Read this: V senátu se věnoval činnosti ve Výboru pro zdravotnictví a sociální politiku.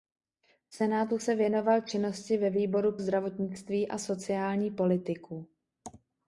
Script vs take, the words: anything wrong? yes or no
yes